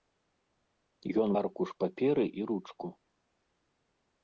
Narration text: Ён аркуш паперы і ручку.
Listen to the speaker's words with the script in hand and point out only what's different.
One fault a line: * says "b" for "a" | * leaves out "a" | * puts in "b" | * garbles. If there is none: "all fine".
all fine